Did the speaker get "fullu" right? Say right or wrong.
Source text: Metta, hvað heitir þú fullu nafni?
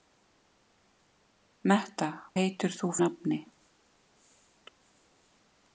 wrong